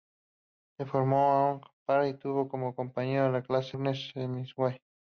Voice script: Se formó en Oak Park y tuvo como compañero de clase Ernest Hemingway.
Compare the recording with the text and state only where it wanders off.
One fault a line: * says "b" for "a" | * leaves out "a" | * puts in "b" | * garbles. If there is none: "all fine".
all fine